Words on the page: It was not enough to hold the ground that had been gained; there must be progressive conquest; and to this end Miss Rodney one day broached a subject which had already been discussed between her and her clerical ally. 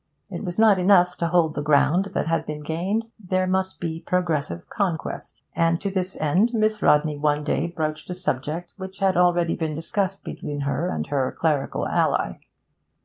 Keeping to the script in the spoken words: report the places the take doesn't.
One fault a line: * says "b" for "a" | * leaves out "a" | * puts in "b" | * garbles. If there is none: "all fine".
all fine